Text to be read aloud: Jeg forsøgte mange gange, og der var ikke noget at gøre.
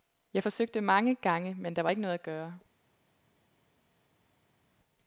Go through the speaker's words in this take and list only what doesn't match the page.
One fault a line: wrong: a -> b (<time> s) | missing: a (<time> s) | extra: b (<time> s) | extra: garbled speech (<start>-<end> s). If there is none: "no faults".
wrong: og -> men (1.5 s)